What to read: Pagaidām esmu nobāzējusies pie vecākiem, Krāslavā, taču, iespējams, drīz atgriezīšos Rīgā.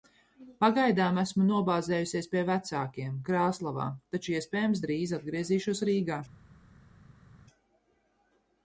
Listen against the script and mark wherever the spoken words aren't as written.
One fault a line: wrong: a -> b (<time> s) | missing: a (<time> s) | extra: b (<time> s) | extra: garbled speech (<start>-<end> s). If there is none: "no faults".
no faults